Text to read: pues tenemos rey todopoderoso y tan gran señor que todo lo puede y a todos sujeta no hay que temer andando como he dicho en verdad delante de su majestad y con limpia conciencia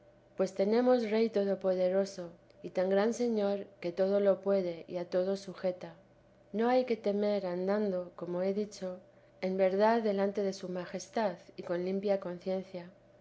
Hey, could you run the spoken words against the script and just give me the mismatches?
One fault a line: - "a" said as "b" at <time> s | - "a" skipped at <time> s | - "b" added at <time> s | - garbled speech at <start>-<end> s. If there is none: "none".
none